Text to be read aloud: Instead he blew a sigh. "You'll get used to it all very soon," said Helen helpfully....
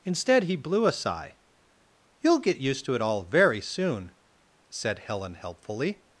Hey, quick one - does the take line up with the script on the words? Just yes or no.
yes